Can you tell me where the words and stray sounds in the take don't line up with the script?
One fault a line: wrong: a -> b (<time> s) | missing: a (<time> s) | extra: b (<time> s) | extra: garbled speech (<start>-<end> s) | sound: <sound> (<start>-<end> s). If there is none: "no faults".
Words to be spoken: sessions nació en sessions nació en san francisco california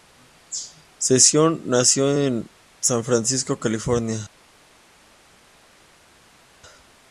missing: sessions nació en (2.5 s)